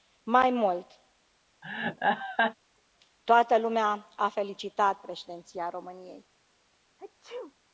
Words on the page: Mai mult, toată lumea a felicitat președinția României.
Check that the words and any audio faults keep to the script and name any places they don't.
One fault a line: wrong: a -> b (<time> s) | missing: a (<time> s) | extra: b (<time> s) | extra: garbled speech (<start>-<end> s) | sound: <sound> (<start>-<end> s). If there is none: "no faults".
sound: laugh (1.6-2.5 s)
sound: sneeze (7.0-7.5 s)